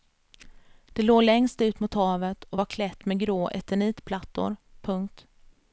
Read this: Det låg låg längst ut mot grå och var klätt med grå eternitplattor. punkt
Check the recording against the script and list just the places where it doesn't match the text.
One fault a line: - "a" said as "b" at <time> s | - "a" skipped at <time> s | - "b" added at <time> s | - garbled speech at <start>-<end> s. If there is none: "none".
- "låg" skipped at 1.2 s
- "grå" said as "havet" at 1.9 s